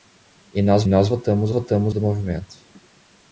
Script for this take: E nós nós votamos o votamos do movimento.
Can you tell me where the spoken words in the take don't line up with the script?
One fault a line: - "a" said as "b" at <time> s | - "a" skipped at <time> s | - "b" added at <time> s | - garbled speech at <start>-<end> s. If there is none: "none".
none